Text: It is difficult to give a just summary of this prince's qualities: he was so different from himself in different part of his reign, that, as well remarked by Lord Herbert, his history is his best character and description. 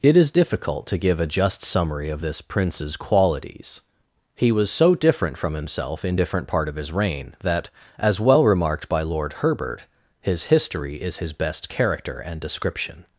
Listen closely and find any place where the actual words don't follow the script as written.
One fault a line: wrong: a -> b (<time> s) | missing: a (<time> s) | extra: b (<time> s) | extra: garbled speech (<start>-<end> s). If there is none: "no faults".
no faults